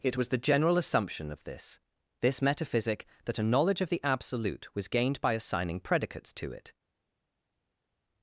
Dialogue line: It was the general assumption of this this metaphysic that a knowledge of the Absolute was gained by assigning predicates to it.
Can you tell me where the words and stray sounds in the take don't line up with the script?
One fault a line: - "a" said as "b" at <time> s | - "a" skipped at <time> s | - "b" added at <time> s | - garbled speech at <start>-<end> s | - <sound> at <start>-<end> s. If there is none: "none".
none